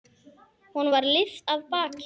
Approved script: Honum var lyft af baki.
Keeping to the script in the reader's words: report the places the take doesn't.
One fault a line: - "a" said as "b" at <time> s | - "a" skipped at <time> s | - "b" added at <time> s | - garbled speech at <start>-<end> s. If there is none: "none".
none